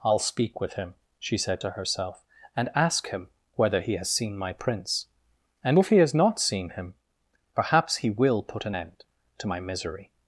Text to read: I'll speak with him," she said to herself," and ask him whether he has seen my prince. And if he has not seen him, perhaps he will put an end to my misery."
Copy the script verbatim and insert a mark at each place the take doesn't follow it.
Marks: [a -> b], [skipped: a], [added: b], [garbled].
I'll speak with him," she said to herself," and ask him whether he has seen my prince. And if he has not seen him, perhaps he will put an end to my misery."